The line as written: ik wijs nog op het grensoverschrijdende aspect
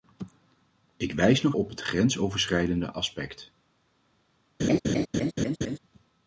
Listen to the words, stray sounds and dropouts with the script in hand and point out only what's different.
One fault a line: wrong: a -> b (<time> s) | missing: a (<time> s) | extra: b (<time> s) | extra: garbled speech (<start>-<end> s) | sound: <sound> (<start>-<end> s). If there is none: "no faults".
sound: laugh (4.6-5.8 s)